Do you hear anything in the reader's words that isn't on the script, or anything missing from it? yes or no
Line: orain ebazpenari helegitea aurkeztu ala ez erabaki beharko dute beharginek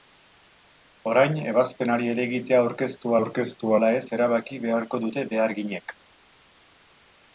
yes